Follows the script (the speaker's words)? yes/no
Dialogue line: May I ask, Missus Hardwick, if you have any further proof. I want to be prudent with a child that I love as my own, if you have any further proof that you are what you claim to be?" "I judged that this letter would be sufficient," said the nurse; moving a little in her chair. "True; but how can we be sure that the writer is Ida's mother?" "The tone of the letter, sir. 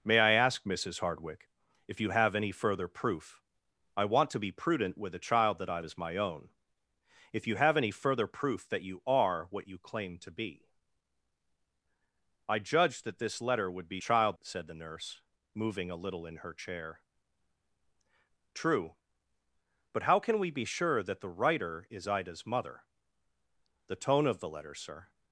no